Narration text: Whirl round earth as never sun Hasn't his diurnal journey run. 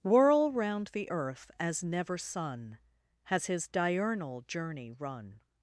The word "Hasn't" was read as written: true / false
false